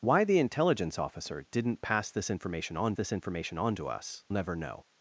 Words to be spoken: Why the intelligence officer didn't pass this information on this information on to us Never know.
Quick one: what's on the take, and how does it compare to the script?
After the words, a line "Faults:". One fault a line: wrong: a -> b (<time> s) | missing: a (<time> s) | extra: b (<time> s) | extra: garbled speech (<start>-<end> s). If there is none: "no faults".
Why the intelligence officer didn't pass this information on this information on to us Never know.
Faults:
no faults